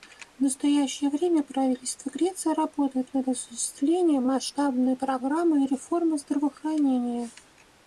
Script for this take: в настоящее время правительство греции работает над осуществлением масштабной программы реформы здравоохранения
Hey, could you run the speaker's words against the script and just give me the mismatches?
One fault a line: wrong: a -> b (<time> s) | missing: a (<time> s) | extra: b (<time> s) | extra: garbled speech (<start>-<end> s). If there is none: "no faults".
no faults